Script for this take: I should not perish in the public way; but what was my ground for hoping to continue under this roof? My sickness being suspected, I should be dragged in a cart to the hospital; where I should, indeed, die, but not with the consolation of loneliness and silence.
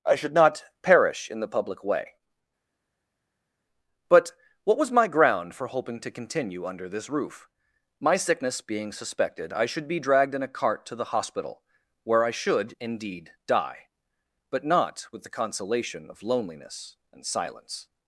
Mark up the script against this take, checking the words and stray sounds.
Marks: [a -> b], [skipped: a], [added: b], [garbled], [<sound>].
I should not perish in the public way; but what was my ground for hoping to continue under this roof? My sickness being suspected, I should be dragged in a cart to the hospital; where I should, indeed, die, but not with the consolation of loneliness and silence.